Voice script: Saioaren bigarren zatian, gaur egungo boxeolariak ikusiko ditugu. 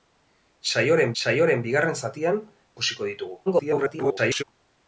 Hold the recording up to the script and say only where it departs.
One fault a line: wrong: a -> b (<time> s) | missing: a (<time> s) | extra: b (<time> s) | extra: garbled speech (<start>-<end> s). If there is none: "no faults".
extra: saioaren (1.2 s)
missing: gaur egungo boxeolariak (2.4 s)
extra: garbled speech (3.5-4.4 s)